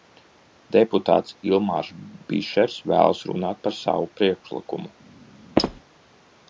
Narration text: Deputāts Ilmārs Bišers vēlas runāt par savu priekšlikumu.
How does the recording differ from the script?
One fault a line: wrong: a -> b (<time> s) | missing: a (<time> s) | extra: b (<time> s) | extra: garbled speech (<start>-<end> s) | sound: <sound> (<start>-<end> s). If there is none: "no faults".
sound: squeak (5.6-5.8 s)